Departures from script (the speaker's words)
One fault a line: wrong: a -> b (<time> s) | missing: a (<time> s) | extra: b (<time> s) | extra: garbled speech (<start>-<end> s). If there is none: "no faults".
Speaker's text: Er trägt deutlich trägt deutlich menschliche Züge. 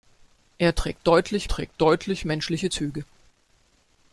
no faults